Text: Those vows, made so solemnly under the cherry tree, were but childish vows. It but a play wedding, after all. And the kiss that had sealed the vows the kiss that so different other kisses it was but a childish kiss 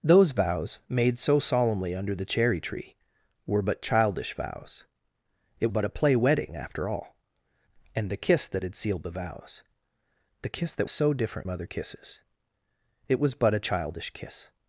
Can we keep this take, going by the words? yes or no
yes